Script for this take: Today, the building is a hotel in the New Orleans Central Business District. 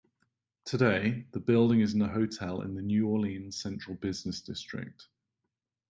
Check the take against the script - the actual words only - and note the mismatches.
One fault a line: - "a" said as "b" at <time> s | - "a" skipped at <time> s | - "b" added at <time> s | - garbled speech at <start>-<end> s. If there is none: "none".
none